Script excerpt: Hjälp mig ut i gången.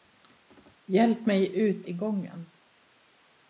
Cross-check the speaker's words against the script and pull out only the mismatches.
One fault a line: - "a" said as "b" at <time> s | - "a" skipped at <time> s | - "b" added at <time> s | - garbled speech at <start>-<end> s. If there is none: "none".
none